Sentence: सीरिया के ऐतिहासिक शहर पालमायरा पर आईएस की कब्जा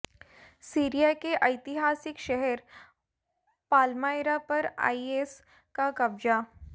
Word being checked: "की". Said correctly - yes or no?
no